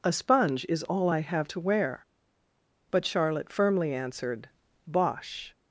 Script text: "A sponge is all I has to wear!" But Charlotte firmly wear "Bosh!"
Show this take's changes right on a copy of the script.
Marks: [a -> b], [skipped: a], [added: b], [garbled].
"A sponge is all I [has -> have] to wear!" But Charlotte firmly [wear -> answered] "Bosh!"